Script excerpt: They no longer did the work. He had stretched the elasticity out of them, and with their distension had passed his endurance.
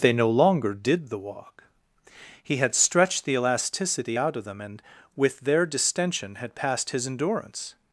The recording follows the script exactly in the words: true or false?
false